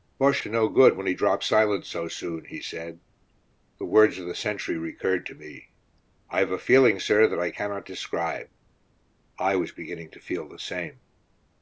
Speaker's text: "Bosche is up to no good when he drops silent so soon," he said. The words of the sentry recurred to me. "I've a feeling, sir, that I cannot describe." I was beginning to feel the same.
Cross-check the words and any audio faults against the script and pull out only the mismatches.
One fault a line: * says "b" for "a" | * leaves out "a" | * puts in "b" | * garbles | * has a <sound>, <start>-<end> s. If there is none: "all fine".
* leaves out "is up"